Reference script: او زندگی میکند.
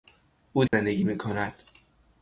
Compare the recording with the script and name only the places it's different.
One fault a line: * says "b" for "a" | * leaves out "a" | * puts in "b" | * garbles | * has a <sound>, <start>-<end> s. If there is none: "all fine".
* has a dropout, 0.7-0.7 s